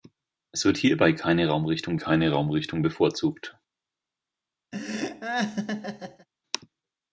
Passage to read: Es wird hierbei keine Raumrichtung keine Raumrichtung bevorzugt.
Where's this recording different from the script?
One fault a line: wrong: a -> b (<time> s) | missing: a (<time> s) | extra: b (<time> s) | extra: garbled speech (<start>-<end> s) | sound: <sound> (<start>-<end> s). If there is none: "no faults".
sound: laugh (4.7-6.3 s)